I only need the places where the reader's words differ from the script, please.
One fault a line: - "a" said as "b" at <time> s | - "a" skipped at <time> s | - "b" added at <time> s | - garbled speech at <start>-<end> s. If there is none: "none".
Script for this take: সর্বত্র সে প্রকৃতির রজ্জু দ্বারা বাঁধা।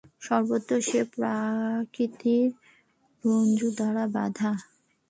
none